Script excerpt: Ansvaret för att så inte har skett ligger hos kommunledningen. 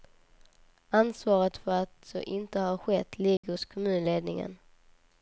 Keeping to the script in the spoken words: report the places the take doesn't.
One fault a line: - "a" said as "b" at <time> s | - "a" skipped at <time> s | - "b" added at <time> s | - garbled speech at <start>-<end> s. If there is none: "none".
none